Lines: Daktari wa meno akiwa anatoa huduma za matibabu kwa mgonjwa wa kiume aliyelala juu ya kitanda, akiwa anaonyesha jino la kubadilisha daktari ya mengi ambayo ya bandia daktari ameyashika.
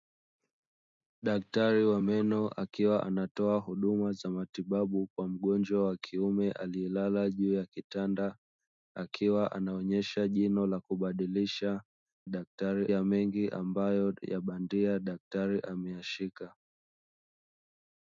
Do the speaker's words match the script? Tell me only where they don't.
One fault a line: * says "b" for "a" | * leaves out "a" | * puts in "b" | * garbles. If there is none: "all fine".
all fine